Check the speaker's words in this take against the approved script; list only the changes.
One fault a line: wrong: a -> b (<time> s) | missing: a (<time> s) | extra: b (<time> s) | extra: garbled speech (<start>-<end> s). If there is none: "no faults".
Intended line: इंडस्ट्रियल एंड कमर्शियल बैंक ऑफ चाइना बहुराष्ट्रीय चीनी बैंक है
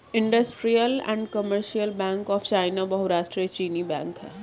no faults